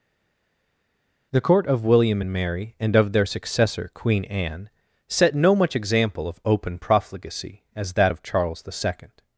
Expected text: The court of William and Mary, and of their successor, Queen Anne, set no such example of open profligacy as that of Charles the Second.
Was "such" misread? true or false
true